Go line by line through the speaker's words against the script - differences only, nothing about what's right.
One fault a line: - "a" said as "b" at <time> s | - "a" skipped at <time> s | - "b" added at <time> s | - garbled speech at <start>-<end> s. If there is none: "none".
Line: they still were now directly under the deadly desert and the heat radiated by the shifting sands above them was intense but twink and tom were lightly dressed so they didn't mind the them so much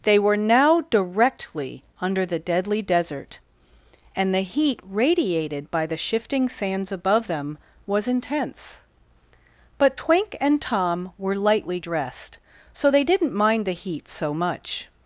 - "still" skipped at 0.2 s
- "them" said as "heat" at 13.7 s